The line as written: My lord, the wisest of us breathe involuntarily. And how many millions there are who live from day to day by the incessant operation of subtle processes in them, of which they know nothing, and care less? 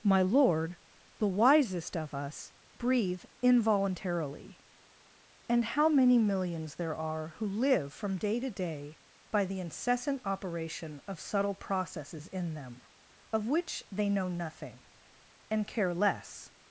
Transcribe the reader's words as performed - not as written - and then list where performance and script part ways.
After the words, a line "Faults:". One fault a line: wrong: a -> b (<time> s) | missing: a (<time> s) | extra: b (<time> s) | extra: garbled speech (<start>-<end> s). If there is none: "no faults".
My lord, the wisest of us breathe involuntarily. And how many millions there are who live from day to day by the incessant operation of subtle processes in them, of which they know nothing, and care less?
Faults:
no faults